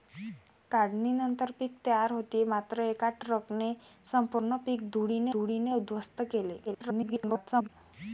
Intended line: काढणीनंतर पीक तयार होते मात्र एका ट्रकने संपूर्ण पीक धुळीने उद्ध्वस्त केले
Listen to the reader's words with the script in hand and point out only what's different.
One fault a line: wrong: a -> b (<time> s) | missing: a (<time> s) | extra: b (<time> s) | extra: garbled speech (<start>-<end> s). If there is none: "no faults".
extra: धुळीने (5.3 s)
extra: garbled speech (6.7-7.7 s)